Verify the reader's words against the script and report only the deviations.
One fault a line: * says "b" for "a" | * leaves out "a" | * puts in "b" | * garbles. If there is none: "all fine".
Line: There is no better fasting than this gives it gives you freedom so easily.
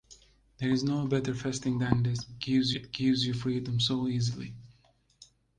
all fine